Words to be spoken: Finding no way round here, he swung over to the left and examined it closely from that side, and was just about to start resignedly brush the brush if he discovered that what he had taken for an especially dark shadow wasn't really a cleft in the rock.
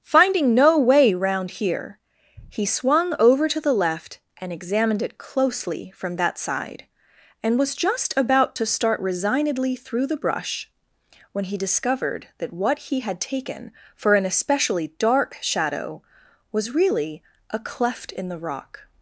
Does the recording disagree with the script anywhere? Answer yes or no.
yes